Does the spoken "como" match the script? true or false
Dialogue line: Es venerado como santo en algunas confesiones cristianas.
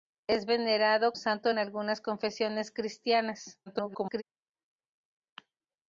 false